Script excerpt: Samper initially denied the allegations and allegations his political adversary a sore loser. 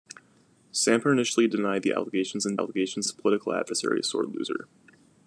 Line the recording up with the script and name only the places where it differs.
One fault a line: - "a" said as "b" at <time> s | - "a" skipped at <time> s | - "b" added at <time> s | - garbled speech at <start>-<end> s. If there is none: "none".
none